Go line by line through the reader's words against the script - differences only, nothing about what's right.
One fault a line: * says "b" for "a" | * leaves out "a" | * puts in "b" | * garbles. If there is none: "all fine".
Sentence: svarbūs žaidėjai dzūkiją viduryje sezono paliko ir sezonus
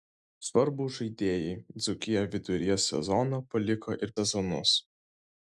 all fine